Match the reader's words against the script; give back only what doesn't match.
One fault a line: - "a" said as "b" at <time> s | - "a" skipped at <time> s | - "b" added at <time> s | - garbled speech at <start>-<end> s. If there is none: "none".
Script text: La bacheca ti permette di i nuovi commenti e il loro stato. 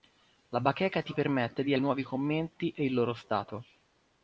none